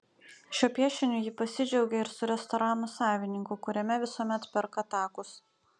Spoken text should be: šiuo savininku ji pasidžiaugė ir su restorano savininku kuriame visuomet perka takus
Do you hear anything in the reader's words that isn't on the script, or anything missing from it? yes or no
yes